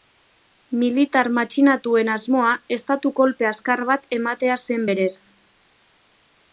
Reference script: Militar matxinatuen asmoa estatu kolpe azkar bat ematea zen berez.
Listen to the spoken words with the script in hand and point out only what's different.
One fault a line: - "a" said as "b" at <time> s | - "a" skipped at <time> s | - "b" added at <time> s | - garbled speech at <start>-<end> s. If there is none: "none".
none